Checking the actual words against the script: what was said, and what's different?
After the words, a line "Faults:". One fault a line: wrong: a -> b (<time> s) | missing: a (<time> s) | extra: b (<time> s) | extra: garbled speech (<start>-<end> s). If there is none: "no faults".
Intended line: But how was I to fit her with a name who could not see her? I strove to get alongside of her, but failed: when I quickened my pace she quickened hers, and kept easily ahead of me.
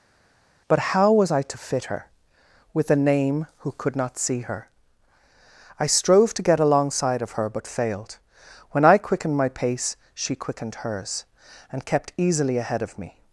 But how was I to fit her with a name who could not see her? I strove to get alongside of her, but failed: when I quickened my pace she quickened hers, and kept easily ahead of me.
Faults:
no faults